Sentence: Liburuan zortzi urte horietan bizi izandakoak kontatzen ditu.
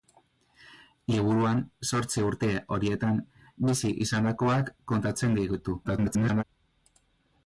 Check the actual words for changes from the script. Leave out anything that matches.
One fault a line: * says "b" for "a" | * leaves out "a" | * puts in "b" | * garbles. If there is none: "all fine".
* garbles